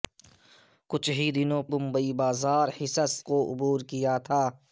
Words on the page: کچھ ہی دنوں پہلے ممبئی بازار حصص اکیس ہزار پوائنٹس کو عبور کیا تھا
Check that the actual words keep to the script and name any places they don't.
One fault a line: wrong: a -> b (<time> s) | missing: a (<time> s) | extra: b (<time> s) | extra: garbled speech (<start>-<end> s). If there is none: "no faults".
missing: پہلے (1.6 s)
missing: اکیس ہزار پوائنٹس (3.1 s)